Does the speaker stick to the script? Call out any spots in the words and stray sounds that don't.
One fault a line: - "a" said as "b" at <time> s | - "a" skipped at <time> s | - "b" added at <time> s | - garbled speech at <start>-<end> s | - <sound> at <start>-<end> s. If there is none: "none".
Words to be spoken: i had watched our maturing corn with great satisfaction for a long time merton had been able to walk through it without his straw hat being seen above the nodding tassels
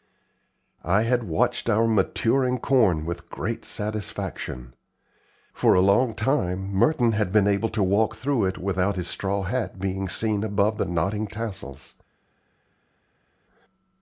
none